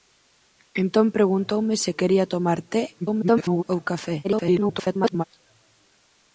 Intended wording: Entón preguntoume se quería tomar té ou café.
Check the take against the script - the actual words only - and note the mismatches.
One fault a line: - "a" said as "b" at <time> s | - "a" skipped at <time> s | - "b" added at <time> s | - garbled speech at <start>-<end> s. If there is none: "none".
- garbled speech at 3.0-3.6 s
- garbled speech at 4.2-5.2 s